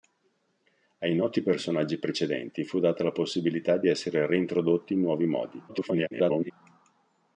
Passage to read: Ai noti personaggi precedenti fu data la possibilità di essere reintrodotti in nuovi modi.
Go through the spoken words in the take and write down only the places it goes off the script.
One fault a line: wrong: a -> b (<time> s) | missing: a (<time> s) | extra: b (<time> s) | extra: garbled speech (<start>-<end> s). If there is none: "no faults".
extra: garbled speech (5.7-6.5 s)